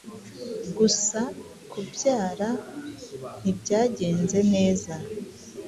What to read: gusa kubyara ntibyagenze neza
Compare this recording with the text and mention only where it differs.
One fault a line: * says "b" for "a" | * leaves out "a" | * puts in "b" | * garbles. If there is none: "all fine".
all fine